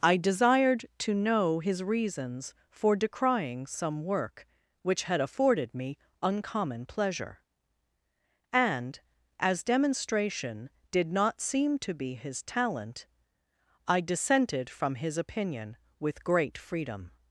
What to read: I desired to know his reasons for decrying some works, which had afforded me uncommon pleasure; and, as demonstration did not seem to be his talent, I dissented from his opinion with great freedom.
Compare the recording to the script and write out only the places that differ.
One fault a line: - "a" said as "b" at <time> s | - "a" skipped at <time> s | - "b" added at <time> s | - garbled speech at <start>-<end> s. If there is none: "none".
- "works" said as "work" at 4.0 s